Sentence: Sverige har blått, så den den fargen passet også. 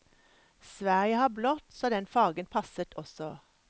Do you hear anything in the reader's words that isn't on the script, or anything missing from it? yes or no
yes